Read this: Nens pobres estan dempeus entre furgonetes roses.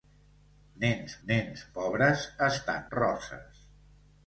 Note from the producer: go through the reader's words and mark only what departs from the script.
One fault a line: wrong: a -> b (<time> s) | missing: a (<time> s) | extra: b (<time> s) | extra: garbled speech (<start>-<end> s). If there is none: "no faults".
extra: nens (1.3 s)
missing: dempeus entre furgonetes (2.9 s)